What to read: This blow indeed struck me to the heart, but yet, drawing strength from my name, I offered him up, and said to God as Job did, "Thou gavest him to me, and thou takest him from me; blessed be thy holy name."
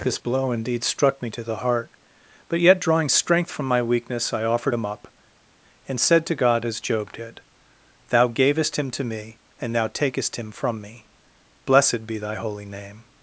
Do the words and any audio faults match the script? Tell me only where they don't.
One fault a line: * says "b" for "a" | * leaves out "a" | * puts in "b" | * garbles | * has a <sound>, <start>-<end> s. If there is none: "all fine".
* says "weakness" for "name"